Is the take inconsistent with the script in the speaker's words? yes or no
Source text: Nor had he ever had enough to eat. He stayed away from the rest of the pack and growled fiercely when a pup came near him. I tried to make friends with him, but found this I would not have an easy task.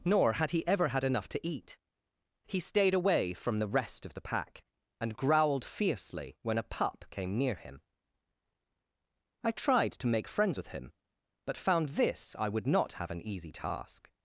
no